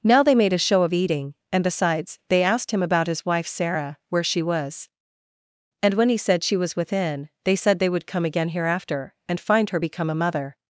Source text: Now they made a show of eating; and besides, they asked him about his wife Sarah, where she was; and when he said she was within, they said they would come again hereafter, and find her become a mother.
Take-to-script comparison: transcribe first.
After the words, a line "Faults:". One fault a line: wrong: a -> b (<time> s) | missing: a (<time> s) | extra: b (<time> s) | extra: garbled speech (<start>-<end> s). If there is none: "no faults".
Now they made a show of eating; and besides, they asked him about his wife Sarah, where she was; and when he said she was within, they said they would come again hereafter, and find her become a mother.
Faults:
no faults